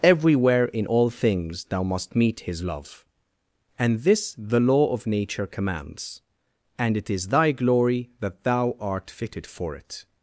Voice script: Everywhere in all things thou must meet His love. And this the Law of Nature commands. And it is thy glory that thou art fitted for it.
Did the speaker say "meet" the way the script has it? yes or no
yes